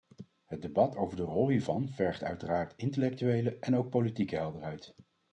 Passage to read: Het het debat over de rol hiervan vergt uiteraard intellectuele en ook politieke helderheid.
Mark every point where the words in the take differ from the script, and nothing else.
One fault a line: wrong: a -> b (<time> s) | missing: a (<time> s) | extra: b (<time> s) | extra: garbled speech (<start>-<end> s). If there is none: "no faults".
missing: het (0.6 s)